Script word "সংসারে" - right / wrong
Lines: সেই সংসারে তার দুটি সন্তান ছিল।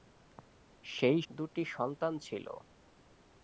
wrong